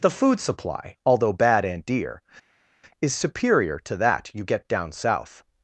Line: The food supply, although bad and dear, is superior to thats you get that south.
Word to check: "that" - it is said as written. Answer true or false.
false